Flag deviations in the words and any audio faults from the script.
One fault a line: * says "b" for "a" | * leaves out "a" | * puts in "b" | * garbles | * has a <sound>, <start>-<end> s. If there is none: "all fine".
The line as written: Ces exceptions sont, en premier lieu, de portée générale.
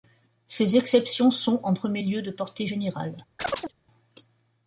* has a chirp, 3.4-3.7 s